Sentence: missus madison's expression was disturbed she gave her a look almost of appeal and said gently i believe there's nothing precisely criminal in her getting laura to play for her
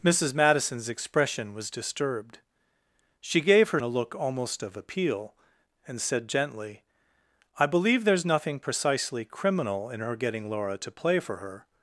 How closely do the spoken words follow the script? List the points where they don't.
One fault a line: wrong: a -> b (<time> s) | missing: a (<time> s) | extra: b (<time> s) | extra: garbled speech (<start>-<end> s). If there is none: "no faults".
no faults